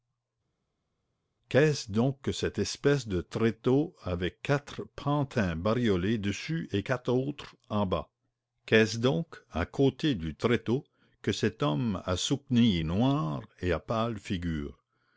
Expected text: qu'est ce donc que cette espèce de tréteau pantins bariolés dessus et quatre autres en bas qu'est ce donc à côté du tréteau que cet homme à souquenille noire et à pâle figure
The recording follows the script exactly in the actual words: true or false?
false